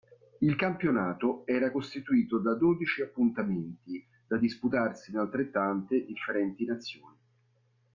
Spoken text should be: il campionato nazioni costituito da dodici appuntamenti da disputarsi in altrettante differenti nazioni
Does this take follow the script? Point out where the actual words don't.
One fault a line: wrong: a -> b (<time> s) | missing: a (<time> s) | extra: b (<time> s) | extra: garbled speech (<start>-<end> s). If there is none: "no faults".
wrong: nazioni -> era (1.5 s)